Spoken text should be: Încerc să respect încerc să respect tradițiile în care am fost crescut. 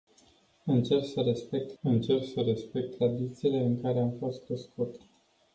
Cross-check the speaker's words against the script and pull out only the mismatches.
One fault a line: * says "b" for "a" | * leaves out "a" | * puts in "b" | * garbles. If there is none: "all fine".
all fine